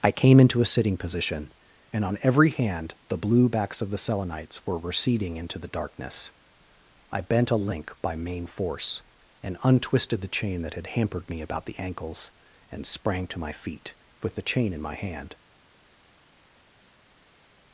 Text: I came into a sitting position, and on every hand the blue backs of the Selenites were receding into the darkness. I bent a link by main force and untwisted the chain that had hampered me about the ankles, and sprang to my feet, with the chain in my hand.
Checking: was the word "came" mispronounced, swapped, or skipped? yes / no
no